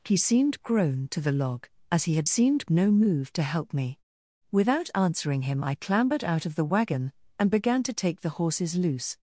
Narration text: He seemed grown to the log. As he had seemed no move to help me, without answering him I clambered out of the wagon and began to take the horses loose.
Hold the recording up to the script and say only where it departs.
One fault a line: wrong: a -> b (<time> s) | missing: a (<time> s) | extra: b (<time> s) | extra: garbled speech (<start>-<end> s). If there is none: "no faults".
no faults